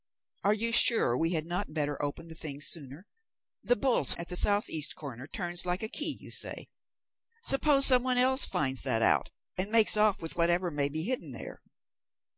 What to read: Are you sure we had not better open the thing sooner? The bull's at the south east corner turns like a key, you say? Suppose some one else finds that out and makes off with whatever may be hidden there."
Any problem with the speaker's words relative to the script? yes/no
no